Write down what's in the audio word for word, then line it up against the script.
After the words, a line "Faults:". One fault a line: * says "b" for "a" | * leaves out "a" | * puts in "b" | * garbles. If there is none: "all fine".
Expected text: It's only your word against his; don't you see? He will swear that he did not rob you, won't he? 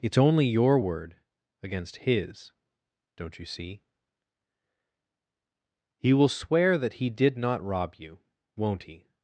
It's only your word against his; don't you see? He will swear that he did not rob you, won't he?
Faults:
all fine